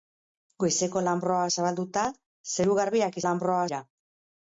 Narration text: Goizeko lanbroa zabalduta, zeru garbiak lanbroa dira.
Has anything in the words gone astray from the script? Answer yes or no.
no